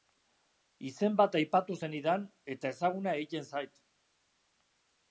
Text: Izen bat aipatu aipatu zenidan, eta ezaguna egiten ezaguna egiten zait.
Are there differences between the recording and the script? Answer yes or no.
yes